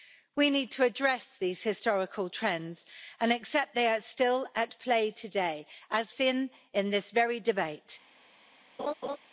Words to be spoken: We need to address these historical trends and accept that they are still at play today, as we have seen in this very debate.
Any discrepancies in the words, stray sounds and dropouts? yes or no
yes